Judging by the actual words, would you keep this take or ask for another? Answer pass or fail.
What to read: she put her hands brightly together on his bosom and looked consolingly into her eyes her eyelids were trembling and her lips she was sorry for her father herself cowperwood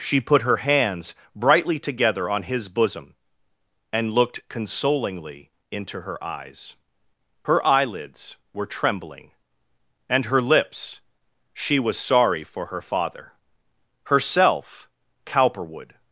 pass